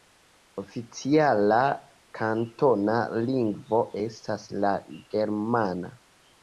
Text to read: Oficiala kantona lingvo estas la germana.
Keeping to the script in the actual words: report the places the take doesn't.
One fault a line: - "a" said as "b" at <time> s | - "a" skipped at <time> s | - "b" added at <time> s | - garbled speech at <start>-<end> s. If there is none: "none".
none